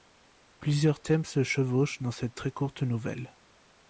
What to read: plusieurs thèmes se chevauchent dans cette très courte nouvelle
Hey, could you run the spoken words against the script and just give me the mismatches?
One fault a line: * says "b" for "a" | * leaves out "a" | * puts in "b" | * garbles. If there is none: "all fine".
all fine